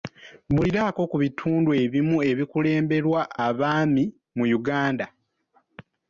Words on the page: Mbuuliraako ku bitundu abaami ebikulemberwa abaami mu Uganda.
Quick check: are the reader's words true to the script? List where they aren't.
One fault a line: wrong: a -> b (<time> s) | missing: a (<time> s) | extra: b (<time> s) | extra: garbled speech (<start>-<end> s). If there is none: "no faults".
wrong: abaami -> ebimu (1.8 s)